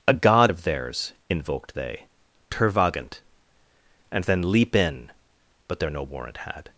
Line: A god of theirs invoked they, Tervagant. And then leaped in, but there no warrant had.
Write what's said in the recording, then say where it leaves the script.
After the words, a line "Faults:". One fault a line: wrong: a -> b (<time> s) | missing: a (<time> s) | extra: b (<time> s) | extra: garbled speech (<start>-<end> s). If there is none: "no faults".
A god of theirs invoked they, Tervagant. And then leap in, but there no warrant had.
Faults:
wrong: leaped -> leap (4.5 s)